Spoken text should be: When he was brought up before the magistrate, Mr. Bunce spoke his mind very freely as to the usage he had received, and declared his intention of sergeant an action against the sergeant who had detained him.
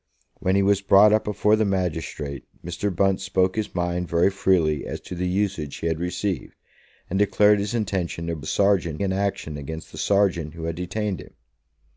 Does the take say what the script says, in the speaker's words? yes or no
yes